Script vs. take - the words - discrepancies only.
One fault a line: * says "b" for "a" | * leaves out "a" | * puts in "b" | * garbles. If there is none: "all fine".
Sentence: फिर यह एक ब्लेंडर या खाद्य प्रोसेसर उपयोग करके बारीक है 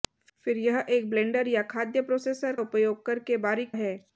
all fine